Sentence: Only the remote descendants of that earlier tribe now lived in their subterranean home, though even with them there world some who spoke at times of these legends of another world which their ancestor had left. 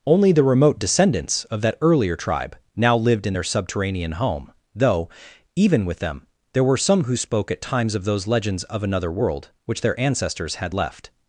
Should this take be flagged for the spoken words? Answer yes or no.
yes